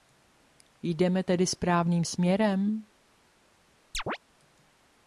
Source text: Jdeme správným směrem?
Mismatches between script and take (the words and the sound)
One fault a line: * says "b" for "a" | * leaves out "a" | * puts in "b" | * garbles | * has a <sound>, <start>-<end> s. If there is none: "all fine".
* puts in "tedy"
* has a chirp, 3.9-4.2 s